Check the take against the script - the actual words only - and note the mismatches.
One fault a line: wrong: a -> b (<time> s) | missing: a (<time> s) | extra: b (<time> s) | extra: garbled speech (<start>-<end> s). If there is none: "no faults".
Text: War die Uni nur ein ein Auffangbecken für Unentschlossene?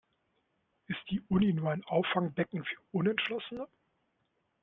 wrong: War -> Ist (0.9 s)
missing: ein (1.8 s)